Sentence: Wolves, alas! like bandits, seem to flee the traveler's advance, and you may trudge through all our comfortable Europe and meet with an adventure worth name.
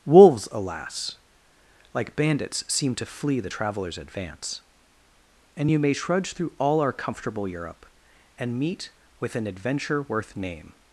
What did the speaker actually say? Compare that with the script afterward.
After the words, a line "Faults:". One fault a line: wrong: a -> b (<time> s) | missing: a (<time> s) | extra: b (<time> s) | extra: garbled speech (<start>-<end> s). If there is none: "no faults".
Wolves, alas! like bandits, seem to flee the traveler's advance, and you may trudge through all our comfortable Europe and meet with an adventure worth name.
Faults:
no faults